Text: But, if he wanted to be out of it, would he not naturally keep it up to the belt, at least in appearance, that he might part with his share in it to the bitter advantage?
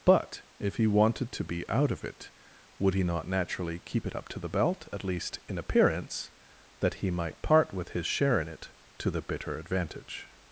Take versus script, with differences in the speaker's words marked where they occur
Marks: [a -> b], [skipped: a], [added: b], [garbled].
But, if he wanted to be out of it, would he not naturally keep it up to the belt, at least in appearance, that he might part with his share in it to the bitter advantage?